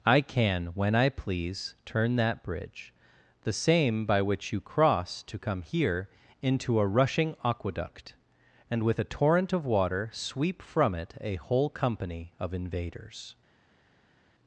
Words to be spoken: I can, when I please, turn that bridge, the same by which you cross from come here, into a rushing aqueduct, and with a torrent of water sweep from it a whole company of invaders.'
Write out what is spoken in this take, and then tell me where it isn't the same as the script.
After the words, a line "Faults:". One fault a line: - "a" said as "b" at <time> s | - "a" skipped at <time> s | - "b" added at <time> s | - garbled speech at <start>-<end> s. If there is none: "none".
I can, when I please, turn that bridge, the same by which you cross to come here, into a rushing aqueduct, and with a torrent of water sweep from it a whole company of invaders.'
Faults:
- "from" said as "to" at 5.2 s